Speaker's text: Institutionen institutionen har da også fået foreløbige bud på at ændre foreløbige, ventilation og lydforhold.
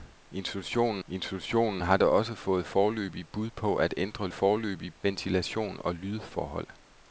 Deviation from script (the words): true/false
false